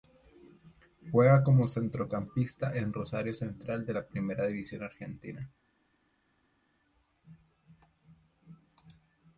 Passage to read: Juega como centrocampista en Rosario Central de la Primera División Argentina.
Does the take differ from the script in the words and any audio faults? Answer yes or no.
no